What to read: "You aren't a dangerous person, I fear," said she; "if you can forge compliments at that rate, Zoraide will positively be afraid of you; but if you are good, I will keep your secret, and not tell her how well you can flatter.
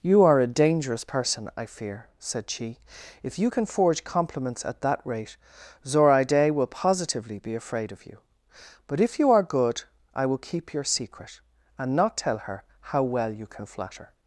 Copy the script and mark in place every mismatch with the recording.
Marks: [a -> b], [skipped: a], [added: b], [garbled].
"You [aren't -> are] a dangerous person, I fear," said she; "if you can forge compliments at that rate, Zoraide will positively be afraid of you; but if you are good, I will keep your secret, and not tell her how well you can flatter.